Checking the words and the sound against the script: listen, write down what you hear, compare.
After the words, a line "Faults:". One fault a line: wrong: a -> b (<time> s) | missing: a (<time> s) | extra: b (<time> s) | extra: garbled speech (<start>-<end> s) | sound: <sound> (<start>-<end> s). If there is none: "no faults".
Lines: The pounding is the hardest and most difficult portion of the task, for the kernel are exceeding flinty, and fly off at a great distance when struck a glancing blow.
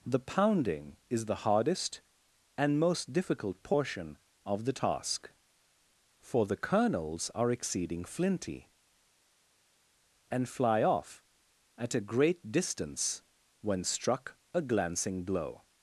The pounding is the hardest and most difficult portion of the task, for the kernels are exceeding flinty, and fly off at a great distance when struck a glancing blow.
Faults:
wrong: kernel -> kernels (6.6 s)